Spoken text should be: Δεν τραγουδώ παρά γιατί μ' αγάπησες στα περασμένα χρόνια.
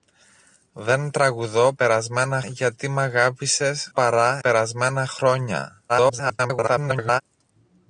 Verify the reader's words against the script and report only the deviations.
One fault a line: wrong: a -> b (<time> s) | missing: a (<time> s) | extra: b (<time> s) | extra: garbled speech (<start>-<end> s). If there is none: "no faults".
wrong: παρά -> περασμένα (1.7 s)
wrong: στα -> παρά (3.9 s)
extra: garbled speech (5.9-7.2 s)